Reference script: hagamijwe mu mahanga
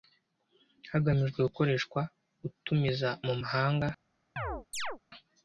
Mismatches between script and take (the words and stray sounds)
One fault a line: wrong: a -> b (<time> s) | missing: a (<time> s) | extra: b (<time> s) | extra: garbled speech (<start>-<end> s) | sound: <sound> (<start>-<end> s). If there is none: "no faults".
extra: gukoreshwa utumiza (1.5 s)
sound: chirp (4.4-5.0 s)